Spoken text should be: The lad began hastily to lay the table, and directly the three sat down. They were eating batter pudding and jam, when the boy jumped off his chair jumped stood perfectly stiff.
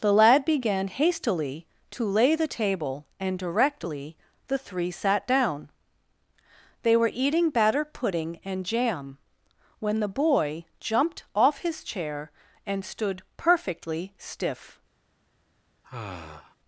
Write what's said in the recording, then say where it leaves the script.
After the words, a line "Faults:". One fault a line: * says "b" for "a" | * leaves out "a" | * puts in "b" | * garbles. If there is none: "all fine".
The lad began hastily to lay the table, and directly the three sat down. They were eating batter pudding and jam, when the boy jumped off his chair and stood perfectly stiff.
Faults:
* says "and" for "jumped"